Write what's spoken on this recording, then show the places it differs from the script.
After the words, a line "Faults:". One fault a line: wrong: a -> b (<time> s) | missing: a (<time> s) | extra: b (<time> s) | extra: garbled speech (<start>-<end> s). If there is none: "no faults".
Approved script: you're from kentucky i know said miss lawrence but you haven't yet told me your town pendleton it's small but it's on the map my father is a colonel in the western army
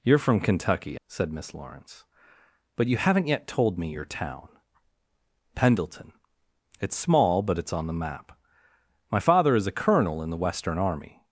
you're from kentucky said miss lawrence but you haven't yet told me your town pendleton it's small but it's on the map my father is a colonel in the western army
Faults:
missing: i know (1.0 s)